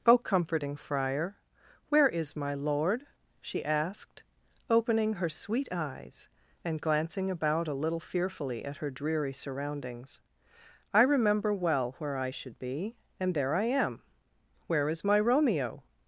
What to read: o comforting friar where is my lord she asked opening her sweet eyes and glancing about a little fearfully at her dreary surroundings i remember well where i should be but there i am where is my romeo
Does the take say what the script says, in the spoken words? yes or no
no